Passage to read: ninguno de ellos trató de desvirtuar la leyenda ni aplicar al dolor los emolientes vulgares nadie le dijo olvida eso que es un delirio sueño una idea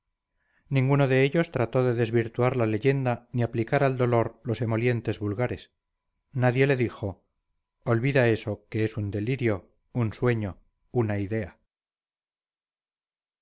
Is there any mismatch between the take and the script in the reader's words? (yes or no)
yes